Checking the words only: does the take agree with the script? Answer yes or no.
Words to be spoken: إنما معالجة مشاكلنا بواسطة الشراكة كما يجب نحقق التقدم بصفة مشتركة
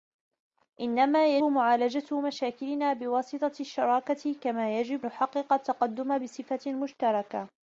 yes